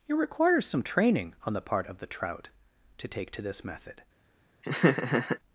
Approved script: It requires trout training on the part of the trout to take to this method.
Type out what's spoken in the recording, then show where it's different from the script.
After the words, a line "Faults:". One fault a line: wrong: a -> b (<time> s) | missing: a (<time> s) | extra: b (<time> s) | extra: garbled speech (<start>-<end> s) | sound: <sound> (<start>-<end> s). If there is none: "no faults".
It requires some training on the part of the trout to take to this method.
Faults:
wrong: trout -> some (0.7 s)
sound: laugh (4.6-5.4 s)